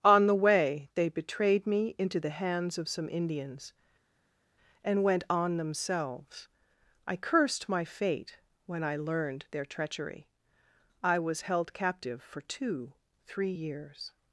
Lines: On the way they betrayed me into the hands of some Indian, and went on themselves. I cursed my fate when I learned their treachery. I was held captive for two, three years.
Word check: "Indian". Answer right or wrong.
wrong